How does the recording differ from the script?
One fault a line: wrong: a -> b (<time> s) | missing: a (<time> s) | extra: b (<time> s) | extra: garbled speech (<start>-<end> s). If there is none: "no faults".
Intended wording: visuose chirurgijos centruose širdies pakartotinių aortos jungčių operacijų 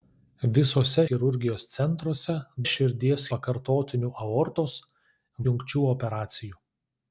no faults